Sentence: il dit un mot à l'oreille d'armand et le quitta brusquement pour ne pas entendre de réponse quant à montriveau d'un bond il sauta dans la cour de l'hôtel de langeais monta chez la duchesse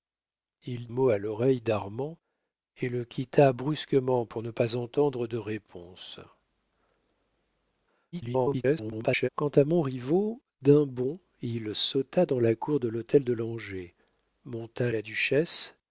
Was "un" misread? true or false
true